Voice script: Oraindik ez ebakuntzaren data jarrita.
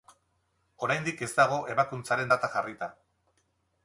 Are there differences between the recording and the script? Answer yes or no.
yes